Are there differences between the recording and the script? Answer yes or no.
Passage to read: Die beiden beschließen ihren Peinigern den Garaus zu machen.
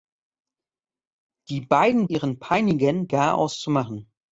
yes